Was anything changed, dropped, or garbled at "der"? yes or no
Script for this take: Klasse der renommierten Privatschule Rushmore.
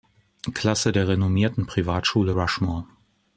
no